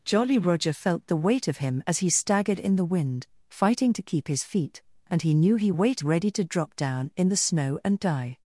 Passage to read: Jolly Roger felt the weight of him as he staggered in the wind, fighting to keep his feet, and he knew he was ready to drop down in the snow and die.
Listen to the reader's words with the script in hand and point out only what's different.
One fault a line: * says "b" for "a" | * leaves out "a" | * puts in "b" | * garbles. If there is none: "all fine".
* says "weight" for "was"